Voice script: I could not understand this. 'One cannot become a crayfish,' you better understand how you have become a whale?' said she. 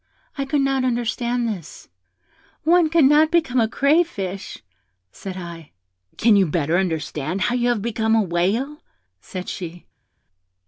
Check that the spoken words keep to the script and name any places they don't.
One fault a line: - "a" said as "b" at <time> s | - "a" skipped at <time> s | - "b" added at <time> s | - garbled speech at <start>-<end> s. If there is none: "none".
- "said I Can" added at 5.1 s